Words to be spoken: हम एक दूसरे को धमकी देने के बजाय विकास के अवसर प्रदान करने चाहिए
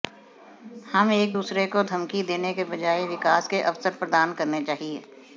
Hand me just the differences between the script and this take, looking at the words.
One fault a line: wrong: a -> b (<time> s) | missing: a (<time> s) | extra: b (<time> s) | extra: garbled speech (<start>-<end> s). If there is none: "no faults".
no faults